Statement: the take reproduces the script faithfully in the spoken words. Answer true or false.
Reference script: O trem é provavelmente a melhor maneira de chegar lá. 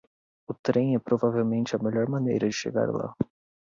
true